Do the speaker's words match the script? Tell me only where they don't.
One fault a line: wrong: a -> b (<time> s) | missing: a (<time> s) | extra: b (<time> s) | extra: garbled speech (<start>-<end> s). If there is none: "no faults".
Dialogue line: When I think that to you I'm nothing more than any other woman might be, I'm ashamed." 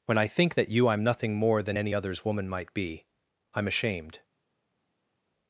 missing: to (0.7 s)
wrong: other -> others (1.9 s)